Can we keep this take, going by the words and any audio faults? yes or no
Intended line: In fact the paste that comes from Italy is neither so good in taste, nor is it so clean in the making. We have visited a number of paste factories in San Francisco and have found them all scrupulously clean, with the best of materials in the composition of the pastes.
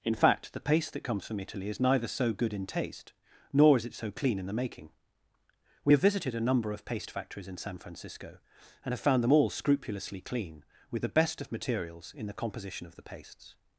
yes